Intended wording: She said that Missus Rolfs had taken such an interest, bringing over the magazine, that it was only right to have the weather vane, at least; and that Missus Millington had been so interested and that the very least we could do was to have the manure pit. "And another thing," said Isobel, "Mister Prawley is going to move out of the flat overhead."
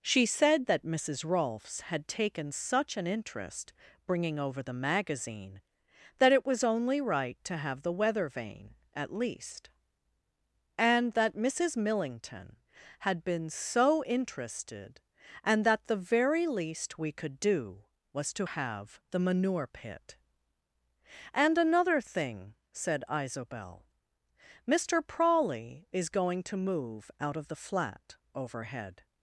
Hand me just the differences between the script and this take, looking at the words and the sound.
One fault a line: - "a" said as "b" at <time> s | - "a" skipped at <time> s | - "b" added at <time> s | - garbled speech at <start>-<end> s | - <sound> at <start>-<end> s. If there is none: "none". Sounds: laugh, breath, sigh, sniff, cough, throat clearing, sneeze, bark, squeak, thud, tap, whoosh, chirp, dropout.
none